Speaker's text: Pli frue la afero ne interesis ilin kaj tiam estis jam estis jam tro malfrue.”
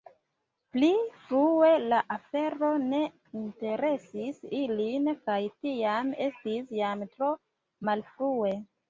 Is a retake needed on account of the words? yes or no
yes